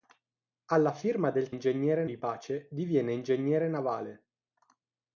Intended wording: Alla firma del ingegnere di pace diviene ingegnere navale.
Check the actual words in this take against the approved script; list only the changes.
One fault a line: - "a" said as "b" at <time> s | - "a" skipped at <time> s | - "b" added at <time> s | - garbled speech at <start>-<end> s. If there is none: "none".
none